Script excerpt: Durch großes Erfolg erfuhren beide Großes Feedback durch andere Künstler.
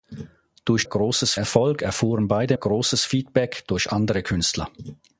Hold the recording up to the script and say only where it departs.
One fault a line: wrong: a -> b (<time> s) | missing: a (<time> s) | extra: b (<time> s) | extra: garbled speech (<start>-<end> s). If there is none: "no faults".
no faults